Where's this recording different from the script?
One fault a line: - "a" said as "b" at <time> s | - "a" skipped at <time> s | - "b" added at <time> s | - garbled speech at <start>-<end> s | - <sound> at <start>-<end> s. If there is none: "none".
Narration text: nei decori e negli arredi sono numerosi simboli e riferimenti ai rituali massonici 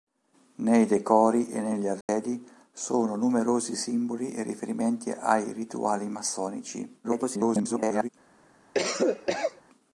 - dropout at 2.0-2.1 s
- garbled speech at 7.0-8.1 s
- cough at 8.7-9.6 s